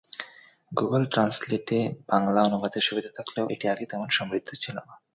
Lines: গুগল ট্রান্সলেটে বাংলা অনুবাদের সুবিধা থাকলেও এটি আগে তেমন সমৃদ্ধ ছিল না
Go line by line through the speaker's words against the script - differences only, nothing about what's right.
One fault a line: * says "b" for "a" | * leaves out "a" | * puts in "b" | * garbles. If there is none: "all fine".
all fine